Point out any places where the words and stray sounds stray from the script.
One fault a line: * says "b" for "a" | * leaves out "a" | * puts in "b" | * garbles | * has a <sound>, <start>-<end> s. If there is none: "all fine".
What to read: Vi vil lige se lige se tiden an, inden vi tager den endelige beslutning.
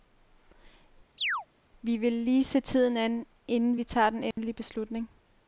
* has a chirp, 1.2-1.5 s
* leaves out "lige se"
* has a dropout, 4.3-4.4 s